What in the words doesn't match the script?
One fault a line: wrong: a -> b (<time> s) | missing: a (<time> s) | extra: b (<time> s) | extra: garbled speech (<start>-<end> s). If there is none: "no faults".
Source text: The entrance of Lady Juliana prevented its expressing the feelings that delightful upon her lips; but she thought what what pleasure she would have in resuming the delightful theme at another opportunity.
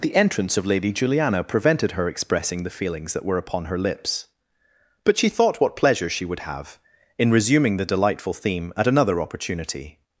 wrong: its -> her (1.9 s)
wrong: delightful -> were (3.2 s)
missing: what (5.8 s)